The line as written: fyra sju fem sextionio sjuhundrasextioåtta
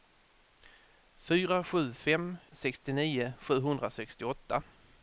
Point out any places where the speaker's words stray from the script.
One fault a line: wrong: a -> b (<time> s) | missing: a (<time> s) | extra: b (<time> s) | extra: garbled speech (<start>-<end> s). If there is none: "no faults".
no faults